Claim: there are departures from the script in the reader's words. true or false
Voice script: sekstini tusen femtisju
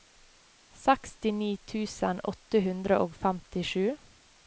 true